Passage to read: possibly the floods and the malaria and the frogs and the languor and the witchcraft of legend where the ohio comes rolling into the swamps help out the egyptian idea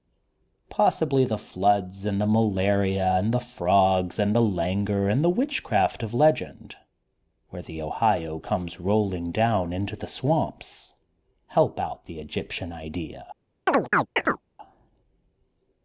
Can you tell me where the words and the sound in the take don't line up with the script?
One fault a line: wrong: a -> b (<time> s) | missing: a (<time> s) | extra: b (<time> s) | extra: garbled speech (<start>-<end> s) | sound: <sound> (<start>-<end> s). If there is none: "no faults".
extra: down (9.3 s)
sound: chirp (13.7-14.4 s)